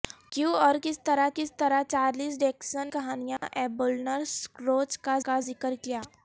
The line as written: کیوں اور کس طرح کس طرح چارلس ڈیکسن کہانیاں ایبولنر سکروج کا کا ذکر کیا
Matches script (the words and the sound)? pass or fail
fail